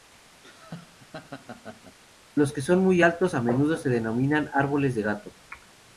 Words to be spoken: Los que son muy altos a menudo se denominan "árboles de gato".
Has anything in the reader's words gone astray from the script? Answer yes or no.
no